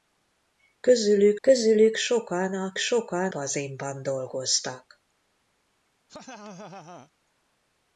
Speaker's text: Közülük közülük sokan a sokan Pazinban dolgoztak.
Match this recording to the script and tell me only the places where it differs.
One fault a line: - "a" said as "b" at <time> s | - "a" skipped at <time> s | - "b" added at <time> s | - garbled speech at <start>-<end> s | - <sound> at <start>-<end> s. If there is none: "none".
- laugh at 6.1-7.1 s